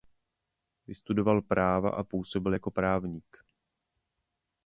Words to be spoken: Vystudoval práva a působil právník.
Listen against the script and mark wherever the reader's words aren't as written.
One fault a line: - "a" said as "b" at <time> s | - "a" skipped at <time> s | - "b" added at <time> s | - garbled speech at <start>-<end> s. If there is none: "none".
- "jako" added at 2.5 s